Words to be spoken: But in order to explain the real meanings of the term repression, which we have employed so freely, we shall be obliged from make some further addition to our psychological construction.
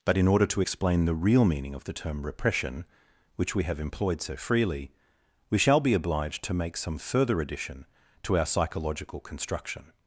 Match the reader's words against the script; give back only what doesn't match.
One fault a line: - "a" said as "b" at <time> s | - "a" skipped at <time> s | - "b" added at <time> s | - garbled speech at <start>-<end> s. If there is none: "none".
- "meanings" said as "meaning" at 1.4 s
- "from" said as "to" at 6.4 s